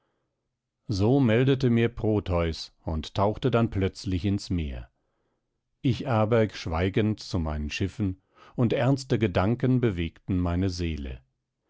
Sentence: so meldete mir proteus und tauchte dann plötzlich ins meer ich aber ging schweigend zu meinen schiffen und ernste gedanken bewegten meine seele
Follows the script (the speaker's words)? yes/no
no